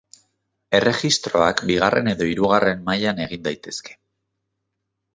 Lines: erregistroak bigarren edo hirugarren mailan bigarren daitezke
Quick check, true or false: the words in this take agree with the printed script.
false